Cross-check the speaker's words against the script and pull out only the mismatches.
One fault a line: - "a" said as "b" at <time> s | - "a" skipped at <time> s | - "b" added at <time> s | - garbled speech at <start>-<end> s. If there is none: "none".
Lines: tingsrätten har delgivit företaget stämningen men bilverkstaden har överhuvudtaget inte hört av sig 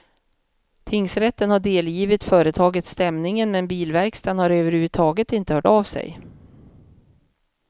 none